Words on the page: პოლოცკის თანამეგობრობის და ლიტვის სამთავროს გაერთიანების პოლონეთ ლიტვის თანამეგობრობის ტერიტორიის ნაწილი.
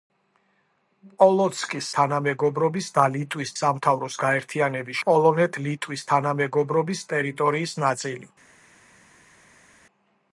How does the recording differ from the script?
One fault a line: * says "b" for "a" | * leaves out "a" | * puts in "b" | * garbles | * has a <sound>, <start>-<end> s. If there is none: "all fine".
all fine